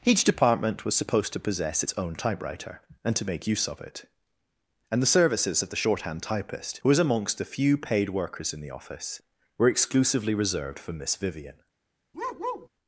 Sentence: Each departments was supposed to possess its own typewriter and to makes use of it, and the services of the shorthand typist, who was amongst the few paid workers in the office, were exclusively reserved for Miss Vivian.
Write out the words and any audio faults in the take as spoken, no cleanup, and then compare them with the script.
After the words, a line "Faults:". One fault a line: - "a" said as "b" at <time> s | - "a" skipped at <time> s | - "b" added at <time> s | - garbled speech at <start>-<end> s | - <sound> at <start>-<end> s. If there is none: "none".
Each department was supposed to possess its own typewriter and to make use of it, and the services of the shorthand typist, who was amongst the few paid workers in the office, were exclusively reserved for Miss Vivian.
Faults:
- "departments" said as "department" at 0.2 s
- "makes" said as "make" at 3.2 s
- bark at 12.1-12.7 s